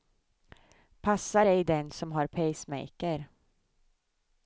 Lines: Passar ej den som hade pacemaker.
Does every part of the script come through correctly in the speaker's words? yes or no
no